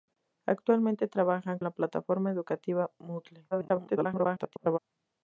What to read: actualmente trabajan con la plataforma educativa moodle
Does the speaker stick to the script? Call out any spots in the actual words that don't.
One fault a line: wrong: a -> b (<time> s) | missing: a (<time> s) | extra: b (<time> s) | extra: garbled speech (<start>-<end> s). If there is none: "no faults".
missing: con (1.6 s)
extra: garbled speech (3.5-4.8 s)